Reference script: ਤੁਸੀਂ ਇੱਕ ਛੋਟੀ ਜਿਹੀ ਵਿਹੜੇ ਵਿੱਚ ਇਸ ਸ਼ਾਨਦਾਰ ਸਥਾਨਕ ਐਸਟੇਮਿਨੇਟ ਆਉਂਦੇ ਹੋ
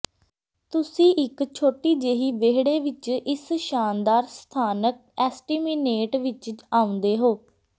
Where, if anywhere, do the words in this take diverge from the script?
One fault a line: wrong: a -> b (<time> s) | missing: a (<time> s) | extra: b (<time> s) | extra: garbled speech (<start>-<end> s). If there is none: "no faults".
extra: ਵਿੱਚ (6.2 s)